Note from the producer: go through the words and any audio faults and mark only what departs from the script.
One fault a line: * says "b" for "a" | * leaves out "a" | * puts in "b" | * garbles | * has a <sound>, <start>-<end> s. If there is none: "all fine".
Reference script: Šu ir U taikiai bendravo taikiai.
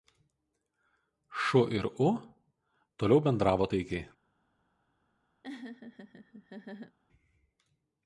* says "toliau" for "taikiai"
* has a laugh, 5.4-7.0 s